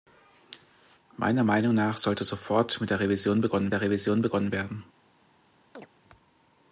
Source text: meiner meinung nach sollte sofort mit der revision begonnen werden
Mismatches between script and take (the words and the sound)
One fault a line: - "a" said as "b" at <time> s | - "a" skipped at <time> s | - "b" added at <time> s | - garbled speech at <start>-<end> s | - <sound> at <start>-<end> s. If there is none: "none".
- "der revision begonnen" added at 3.7 s
- chirp at 5.7-5.9 s